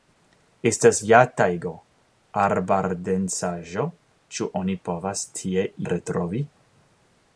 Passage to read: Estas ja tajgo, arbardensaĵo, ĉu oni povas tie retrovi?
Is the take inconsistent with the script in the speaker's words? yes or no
no